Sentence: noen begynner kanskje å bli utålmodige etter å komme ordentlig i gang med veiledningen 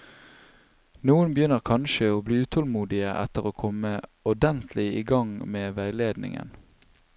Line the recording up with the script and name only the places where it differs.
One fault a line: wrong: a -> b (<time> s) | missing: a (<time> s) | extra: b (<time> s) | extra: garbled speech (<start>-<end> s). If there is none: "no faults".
no faults